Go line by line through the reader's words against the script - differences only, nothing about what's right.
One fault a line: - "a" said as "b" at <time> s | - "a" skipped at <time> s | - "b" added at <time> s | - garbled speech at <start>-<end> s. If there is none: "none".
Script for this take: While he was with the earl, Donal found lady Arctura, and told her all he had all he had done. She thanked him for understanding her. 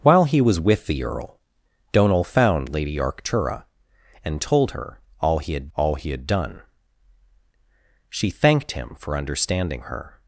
none